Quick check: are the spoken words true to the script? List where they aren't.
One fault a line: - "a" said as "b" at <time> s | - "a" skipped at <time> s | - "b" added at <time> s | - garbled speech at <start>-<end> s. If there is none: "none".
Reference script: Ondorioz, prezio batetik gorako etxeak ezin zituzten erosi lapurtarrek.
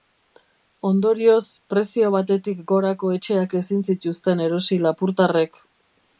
none